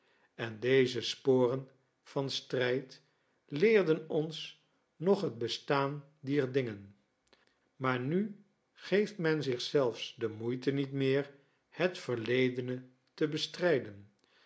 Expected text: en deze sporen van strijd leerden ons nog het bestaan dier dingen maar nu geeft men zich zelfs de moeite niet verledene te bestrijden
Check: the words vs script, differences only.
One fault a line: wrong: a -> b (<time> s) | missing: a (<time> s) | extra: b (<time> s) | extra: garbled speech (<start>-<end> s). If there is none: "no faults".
extra: meer het (10.9 s)